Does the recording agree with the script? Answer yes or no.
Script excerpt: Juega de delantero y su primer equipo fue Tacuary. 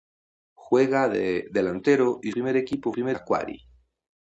no